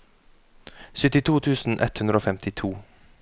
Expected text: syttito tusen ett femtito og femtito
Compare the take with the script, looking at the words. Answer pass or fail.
fail